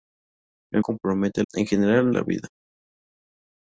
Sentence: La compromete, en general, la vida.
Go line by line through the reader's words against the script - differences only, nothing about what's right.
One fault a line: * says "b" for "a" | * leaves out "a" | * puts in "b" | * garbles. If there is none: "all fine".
all fine